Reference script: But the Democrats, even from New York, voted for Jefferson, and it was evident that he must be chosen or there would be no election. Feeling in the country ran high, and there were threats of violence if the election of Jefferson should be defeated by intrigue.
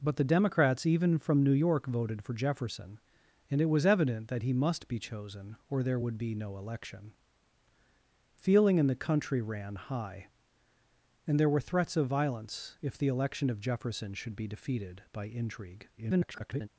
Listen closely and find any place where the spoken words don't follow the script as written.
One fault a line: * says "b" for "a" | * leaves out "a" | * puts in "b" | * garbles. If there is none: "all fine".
* garbles